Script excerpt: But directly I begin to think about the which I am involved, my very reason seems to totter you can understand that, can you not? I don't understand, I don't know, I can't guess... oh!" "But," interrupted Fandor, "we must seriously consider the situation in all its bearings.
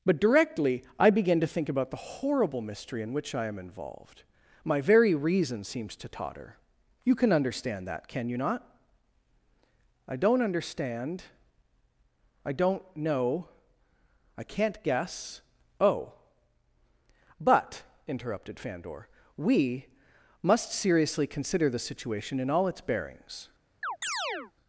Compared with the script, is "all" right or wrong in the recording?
right